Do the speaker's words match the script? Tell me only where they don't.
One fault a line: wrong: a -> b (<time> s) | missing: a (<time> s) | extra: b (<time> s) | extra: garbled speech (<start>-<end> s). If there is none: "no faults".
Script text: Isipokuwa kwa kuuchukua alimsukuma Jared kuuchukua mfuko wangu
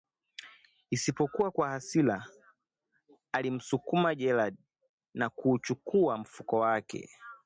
wrong: kuuchukua -> hasira (1.7 s)
extra: na (5.1 s)
wrong: wangu -> wake (6.6 s)